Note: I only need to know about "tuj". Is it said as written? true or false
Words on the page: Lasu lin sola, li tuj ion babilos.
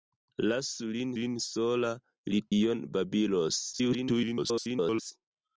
false